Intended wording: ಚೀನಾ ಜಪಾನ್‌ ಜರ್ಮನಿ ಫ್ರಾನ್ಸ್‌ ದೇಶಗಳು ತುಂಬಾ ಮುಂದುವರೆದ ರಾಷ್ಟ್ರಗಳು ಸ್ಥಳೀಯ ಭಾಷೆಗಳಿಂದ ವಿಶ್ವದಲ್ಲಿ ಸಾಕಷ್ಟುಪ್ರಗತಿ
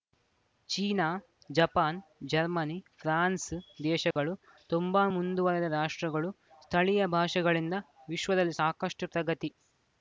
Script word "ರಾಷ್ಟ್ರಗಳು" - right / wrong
right